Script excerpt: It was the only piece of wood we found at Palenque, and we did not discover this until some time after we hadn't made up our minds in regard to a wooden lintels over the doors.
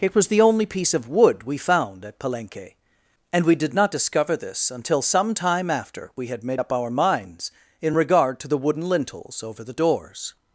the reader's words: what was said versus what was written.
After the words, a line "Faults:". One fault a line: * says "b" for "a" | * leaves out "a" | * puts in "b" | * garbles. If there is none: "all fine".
It was the only piece of wood we found at Palenque, and we did not discover this until some time after we had made up our minds in regard to the wooden lintels over the doors.
Faults:
* says "had" for "hadn't"
* says "the" for "a"